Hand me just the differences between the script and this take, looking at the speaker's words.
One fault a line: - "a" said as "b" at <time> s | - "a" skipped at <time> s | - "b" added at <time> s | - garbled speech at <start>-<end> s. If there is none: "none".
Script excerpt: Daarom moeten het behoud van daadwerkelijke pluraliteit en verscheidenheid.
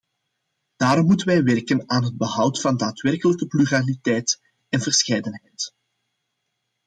- "wij werken aan" added at 1.3 s